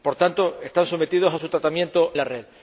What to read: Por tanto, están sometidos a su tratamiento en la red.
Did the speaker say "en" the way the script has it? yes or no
no